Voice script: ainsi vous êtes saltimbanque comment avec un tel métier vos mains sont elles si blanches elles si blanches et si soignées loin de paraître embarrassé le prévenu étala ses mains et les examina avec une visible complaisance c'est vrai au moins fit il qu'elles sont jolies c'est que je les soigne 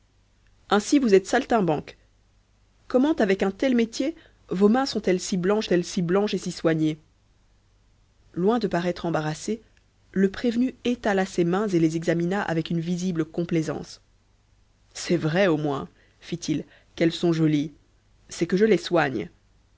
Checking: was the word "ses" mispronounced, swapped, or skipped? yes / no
no